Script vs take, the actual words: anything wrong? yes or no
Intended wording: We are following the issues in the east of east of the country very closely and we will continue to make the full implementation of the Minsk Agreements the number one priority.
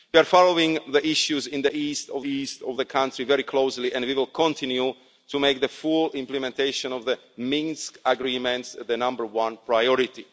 no